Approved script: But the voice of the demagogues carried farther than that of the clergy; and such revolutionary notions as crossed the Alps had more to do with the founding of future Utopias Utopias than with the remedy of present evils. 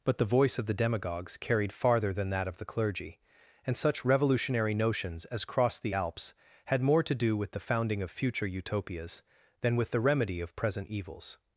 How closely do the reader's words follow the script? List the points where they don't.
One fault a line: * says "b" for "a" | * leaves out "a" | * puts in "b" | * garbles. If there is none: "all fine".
* leaves out "Utopias"